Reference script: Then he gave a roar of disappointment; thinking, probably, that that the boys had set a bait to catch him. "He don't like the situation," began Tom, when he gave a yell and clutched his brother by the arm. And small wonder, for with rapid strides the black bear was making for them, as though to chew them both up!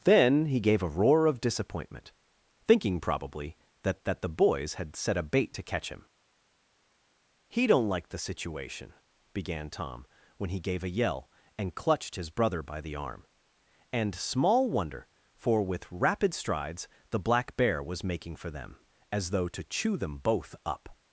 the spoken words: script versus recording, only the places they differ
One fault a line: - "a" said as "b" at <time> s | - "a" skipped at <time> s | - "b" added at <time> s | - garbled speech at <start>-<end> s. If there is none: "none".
none